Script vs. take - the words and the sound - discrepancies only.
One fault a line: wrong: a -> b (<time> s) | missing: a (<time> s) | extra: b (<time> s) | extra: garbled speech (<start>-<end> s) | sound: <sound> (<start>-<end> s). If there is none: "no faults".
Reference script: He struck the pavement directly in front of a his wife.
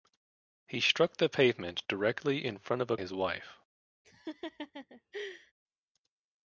sound: laugh (4.0-5.5 s)